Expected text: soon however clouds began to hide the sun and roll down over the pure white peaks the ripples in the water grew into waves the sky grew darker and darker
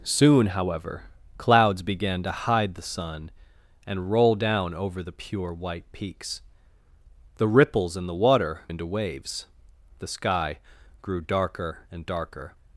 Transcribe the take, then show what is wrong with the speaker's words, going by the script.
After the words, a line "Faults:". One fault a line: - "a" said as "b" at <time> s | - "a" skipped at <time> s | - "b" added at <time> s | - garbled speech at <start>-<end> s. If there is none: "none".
soon however clouds began to hide the sun and roll down over the pure white peaks the ripples in the water into waves the sky grew darker and darker
Faults:
- "grew" skipped at 8.6 s